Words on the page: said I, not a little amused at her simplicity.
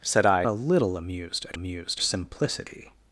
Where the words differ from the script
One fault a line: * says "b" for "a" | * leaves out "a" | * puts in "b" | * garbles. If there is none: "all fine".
* leaves out "not"
* says "amused" for "her"